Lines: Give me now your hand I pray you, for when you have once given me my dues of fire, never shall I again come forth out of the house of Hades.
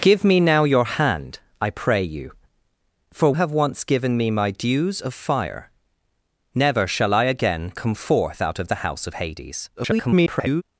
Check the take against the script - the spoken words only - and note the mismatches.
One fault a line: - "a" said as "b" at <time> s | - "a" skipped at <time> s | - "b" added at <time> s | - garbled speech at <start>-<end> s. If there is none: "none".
- "when you" skipped at 3.3 s
- garbled speech at 9.8-10.6 s